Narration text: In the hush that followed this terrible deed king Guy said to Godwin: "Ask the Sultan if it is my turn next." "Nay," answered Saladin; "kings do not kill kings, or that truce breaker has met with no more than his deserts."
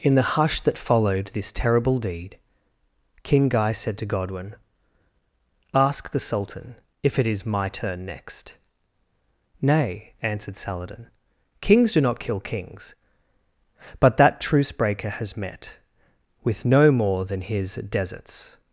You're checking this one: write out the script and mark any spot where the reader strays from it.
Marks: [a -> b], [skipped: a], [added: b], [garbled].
In the hush that followed this terrible deed king Guy said to Godwin: "Ask the Sultan if it is my turn next." "Nay," answered Saladin; "kings do not kill kings, [or -> but] that truce breaker has met with no more than his deserts."